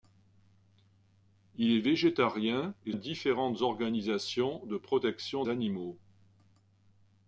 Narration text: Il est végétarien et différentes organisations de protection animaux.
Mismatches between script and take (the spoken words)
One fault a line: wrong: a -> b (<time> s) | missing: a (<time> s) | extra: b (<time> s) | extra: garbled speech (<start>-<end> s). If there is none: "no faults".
no faults